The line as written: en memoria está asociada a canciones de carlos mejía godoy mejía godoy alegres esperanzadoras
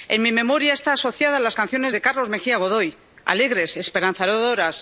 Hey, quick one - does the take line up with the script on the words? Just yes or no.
no